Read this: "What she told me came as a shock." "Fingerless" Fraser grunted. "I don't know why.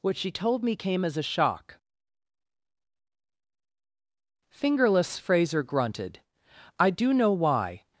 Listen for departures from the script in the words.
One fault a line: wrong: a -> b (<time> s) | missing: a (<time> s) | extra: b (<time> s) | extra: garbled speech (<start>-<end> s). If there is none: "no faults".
wrong: don't -> do (6.9 s)